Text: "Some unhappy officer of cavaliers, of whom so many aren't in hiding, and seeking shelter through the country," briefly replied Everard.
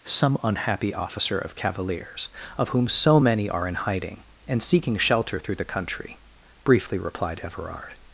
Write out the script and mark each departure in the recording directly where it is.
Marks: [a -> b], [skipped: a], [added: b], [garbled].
"Some unhappy officer of cavaliers, of whom so many [aren't -> are] in hiding, and seeking shelter through the country," briefly replied Everard.